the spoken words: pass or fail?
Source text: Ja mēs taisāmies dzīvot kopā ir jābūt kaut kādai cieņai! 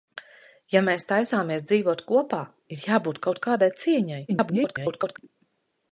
fail